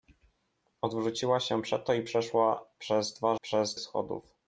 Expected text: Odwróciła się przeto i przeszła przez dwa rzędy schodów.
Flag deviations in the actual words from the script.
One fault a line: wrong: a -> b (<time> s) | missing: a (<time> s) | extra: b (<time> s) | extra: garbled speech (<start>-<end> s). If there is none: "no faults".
wrong: rzędy -> przez (3.4 s)